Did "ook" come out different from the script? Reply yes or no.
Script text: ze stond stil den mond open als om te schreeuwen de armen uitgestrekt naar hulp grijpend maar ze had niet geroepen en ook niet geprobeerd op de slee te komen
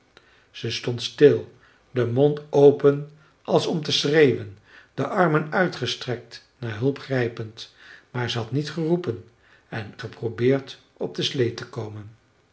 yes